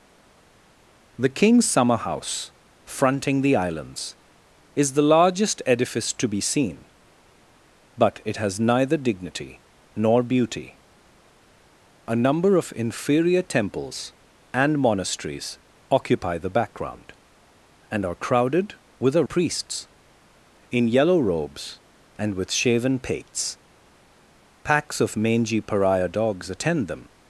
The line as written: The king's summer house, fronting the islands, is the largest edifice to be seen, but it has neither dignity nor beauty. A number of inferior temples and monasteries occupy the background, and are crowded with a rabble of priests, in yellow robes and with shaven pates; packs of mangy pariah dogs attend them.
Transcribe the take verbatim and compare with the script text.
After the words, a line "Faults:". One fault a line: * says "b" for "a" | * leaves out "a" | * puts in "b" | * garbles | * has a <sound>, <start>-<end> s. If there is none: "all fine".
The king's summer house, fronting the islands, is the largest edifice to be seen, but it has neither dignity nor beauty. A number of inferior temples and monasteries occupy the background, and are crowded with a priests, in yellow robes and with shaven pates; packs of mangy pariah dogs attend them.
Faults:
* leaves out "rabble of"